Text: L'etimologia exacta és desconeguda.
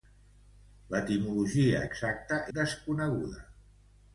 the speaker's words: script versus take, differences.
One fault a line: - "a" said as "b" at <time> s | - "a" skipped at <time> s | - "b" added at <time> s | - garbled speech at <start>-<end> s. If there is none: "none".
- "és" skipped at 2.4 s